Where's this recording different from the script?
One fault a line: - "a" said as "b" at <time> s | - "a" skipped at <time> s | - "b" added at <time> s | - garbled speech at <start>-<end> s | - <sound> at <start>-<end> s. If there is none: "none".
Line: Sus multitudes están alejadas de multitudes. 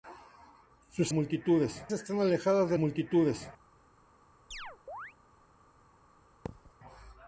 - chirp at 4.5-5.1 s
- thud at 6.5-6.7 s